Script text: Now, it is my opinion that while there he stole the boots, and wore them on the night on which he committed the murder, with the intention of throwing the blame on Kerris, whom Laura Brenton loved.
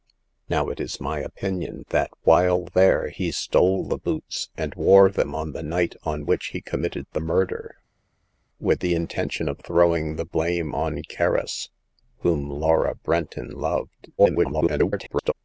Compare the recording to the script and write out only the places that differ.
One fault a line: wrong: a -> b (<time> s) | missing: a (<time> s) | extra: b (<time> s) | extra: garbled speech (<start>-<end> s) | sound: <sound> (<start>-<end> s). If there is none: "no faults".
extra: garbled speech (14.2-15.3 s)